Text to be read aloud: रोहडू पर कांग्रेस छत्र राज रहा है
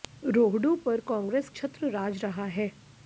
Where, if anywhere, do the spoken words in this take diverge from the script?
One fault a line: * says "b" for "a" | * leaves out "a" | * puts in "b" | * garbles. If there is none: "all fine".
all fine